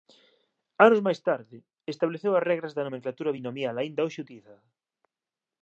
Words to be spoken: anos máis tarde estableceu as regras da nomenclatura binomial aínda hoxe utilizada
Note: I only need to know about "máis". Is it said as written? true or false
true